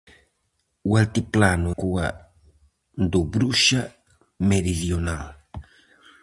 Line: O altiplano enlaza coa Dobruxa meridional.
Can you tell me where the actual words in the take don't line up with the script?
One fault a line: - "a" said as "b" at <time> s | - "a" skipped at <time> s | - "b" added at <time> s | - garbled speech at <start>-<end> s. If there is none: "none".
- "enlaza" skipped at 1.7 s